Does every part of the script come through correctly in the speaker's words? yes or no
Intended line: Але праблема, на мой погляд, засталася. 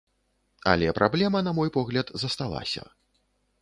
yes